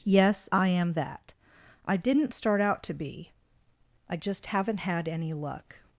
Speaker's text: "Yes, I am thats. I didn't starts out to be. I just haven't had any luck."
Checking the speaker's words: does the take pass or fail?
fail